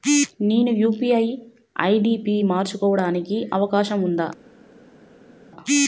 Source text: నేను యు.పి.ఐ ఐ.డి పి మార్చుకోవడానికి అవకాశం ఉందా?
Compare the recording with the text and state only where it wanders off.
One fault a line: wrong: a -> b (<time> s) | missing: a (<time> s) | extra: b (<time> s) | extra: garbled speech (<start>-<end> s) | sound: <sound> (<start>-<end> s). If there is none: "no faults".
no faults